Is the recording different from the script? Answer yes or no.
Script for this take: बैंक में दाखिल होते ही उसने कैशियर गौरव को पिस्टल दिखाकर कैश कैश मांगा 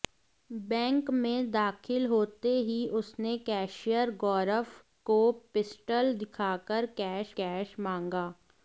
no